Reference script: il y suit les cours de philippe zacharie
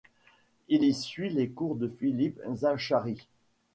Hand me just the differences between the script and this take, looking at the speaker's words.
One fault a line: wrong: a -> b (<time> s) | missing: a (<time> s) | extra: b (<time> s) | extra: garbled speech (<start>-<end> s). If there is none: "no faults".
no faults